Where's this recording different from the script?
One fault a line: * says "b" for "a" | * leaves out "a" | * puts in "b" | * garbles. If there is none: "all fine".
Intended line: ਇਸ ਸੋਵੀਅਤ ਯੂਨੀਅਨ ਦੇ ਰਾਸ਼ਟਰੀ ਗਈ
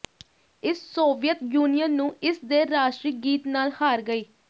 * puts in "ਨੂੰ ਇਸ"
* puts in "ਗੀਤ ਨਾਲ ਹਾਰ"